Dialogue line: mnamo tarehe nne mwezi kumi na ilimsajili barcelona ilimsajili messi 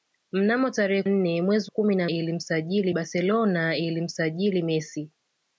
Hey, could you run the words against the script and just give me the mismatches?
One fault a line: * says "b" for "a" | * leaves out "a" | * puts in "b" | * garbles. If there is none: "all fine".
all fine